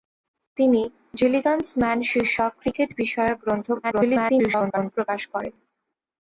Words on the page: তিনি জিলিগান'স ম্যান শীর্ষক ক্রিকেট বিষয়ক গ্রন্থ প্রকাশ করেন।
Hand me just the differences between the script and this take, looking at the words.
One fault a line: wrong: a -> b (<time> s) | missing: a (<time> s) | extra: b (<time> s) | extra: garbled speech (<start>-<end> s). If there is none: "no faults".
extra: garbled speech (3.8-4.9 s)